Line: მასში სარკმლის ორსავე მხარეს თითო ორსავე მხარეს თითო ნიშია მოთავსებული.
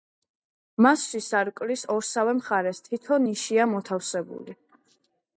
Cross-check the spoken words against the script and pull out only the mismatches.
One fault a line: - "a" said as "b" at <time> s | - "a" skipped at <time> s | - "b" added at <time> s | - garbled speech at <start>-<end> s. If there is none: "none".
- "ორსავე მხარეს თითო" skipped at 3.2 s